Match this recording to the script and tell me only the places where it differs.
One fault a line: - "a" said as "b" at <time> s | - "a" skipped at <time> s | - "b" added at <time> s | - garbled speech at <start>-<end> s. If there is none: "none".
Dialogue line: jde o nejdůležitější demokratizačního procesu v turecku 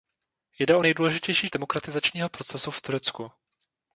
none